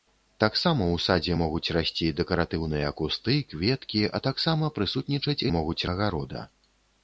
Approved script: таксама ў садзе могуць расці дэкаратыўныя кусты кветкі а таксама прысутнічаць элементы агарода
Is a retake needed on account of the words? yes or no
yes